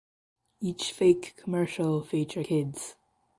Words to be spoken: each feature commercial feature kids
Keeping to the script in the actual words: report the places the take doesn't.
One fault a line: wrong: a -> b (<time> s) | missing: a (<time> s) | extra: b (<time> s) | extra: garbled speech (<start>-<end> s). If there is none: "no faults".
wrong: feature -> fake (0.9 s)